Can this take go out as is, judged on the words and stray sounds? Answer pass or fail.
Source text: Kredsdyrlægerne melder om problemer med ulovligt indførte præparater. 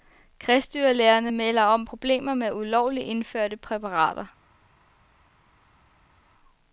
pass